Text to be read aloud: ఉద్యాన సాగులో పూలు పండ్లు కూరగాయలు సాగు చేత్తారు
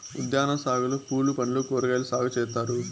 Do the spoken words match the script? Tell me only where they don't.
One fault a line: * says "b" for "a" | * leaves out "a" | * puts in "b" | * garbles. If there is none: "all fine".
all fine